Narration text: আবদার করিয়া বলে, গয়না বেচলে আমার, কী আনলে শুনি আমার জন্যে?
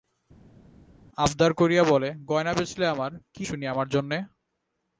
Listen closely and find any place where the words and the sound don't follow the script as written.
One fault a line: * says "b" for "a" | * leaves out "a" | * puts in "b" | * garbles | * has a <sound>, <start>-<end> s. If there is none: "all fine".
* leaves out "আনলে"